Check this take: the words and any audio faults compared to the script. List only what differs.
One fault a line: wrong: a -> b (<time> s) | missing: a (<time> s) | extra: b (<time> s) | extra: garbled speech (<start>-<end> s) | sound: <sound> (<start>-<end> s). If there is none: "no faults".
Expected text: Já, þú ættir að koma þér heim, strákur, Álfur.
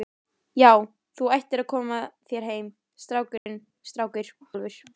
sound: dropout (3.4-3.5 s)